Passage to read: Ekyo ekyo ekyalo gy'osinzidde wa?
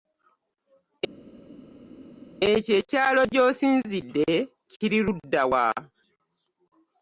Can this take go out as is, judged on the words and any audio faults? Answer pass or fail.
fail